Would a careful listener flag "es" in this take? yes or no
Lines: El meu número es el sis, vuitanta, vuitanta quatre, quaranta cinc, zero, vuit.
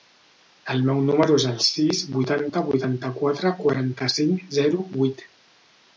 no